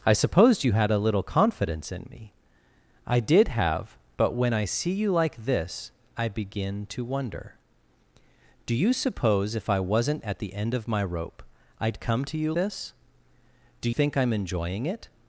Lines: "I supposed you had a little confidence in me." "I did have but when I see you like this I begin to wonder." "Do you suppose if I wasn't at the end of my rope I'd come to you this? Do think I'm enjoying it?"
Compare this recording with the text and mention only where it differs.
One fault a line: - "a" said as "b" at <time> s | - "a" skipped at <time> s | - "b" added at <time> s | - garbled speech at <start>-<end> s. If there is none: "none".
none